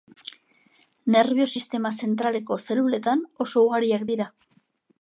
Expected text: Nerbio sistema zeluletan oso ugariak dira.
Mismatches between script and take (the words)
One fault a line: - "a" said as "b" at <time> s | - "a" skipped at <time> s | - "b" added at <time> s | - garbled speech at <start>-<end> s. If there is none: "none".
- "zentraleko" added at 2.0 s